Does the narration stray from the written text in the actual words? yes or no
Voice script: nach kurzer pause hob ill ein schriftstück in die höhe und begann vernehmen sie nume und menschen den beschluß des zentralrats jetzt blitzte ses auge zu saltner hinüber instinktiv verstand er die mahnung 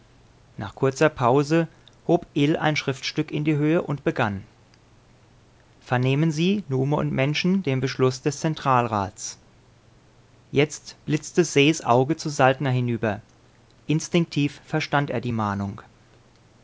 no